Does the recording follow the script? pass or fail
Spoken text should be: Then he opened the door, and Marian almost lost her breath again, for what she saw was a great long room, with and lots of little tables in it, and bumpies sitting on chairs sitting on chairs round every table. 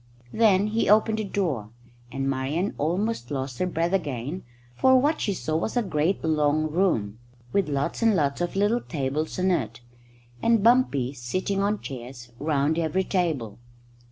fail